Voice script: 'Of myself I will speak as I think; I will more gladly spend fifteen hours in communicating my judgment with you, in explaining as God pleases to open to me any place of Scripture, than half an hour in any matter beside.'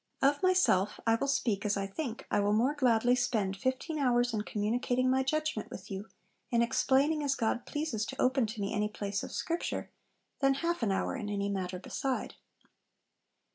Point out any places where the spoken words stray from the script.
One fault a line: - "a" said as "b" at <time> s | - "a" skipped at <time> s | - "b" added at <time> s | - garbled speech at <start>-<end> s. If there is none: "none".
none